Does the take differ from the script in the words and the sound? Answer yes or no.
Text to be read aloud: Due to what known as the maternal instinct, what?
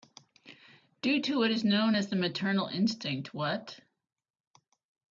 yes